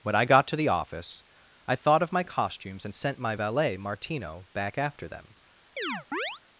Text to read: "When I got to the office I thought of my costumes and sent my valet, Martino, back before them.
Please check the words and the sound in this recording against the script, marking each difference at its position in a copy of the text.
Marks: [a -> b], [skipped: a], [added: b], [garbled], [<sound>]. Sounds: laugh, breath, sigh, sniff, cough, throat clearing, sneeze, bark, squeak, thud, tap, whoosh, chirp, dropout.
"When I got to the office I thought of my costumes and sent my valet, Martino, back [before -> after] them. [chirp]